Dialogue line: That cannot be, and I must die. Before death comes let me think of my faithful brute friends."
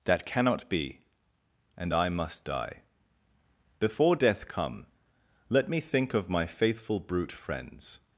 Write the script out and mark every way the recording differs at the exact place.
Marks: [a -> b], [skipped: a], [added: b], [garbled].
That cannot be, and I must die. Before death [comes -> come] let me think of my faithful brute friends."